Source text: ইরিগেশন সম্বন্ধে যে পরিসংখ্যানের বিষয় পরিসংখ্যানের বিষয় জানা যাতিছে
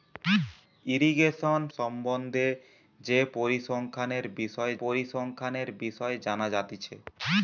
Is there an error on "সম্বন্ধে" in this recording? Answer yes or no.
no